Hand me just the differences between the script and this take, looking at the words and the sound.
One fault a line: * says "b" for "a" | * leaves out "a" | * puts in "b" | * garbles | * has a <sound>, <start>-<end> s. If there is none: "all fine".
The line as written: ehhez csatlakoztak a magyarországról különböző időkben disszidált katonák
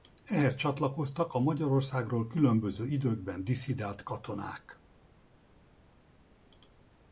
all fine